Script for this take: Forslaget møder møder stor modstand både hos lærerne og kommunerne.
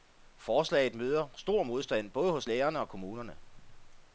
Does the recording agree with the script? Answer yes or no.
no